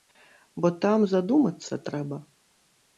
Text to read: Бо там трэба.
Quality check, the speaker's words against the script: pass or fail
fail